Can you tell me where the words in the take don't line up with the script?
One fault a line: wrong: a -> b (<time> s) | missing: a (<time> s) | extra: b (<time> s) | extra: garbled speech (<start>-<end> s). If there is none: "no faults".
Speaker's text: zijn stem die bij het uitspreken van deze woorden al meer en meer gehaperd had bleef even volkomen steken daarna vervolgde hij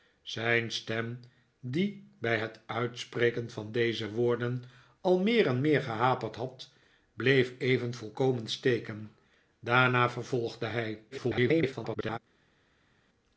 extra: garbled speech (11.1-12.2 s)